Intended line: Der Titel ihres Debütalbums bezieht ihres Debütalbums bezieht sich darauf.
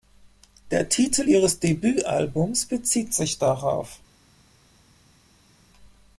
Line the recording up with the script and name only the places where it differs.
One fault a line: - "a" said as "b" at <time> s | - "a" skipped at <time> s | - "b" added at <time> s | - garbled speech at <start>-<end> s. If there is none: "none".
- "ihres Debütalbums bezieht" skipped at 3.1 s